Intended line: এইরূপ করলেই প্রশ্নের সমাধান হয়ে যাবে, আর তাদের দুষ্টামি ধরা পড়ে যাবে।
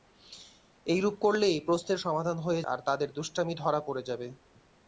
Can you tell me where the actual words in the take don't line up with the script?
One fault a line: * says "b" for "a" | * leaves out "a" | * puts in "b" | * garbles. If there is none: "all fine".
* leaves out "যাবে"